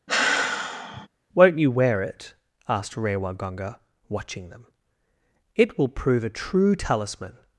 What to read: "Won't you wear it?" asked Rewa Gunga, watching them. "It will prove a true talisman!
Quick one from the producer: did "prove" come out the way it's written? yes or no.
yes